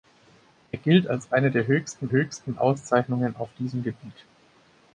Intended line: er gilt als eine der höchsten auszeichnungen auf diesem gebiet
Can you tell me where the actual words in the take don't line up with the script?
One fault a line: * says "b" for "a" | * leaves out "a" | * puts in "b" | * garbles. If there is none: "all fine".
* puts in "höchsten"